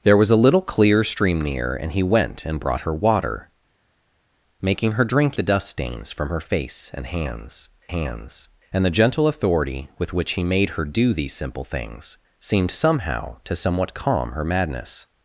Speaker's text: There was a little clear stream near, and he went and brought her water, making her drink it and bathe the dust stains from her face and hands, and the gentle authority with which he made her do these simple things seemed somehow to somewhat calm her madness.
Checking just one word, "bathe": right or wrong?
wrong